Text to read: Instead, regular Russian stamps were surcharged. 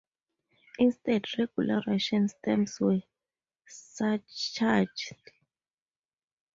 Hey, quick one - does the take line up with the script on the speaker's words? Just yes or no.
yes